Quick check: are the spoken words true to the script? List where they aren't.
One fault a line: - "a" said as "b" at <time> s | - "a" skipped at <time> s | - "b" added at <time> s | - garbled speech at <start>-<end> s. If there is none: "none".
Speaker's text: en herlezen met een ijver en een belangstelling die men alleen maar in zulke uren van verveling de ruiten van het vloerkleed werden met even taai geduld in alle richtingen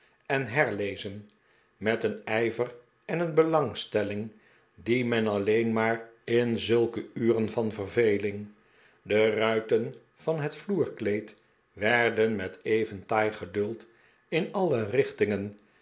none